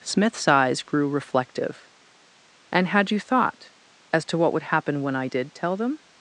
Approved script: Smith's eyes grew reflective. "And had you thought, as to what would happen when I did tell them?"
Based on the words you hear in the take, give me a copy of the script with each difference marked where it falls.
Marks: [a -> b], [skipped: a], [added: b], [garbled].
Smith's eyes grew reflective. "And had you thought, as to what would happen when I did tell them?"